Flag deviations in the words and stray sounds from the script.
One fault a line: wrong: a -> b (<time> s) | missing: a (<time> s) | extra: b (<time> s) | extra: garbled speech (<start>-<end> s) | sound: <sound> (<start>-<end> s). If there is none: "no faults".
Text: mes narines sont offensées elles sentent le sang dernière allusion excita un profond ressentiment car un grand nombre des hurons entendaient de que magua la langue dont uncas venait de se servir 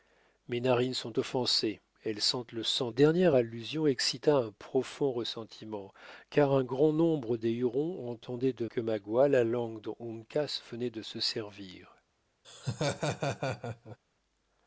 sound: laugh (12.4-14.0 s)